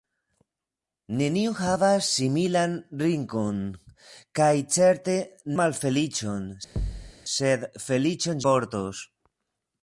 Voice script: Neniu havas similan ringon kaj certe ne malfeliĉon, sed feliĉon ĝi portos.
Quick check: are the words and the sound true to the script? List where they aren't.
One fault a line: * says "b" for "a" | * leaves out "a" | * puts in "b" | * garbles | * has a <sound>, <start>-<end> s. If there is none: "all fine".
* leaves out "ne"
* has a thud, 6.8-7.1 s
* leaves out "ĝi"